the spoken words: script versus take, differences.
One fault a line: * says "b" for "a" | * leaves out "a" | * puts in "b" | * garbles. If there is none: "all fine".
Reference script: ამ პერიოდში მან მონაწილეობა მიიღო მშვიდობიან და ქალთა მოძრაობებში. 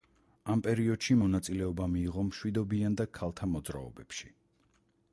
* leaves out "მან"